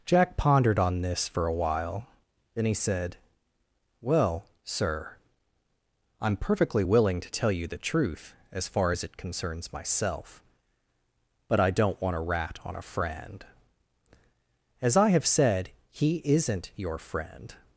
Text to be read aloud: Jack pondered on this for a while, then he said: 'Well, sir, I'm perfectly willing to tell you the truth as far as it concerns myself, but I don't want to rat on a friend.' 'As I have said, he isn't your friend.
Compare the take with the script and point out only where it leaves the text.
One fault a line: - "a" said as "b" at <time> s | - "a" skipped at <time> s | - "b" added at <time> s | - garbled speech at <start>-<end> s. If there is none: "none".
none